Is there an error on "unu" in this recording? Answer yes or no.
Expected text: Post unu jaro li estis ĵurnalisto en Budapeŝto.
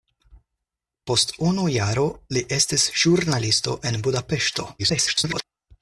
no